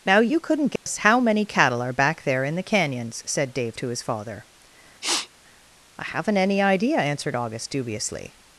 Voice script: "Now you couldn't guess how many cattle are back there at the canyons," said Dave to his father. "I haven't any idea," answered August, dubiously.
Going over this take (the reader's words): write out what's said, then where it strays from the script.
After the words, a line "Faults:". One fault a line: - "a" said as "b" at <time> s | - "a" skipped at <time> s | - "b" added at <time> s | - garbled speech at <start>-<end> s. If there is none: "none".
"Now you couldn't guess how many cattle are back there in the canyons," said Dave to his father. "I haven't any idea," answered August, dubiously.
Faults:
- "at" said as "in" at 2.4 s